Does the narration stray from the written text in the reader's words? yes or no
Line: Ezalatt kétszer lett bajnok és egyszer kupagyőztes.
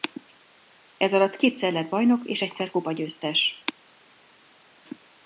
no